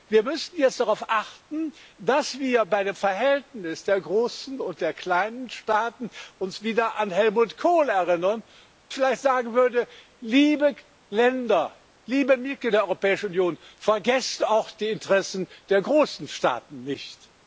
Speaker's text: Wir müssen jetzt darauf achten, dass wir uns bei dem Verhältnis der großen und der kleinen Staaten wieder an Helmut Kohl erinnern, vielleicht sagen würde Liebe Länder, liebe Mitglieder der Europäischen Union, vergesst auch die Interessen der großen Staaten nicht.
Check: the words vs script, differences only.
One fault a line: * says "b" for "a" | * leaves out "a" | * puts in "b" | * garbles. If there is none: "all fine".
all fine